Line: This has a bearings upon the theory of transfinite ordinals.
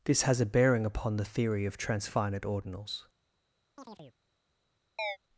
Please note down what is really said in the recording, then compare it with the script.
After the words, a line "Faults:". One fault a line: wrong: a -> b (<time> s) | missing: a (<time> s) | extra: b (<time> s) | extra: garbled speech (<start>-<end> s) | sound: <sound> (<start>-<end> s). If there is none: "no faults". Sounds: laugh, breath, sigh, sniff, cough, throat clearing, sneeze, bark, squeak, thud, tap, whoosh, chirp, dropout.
This has a bearing upon the theory of transfinite ordinals.
Faults:
wrong: bearings -> bearing (0.5 s)
sound: chirp (3.8-4.2 s)
sound: chirp (5.0-5.2 s)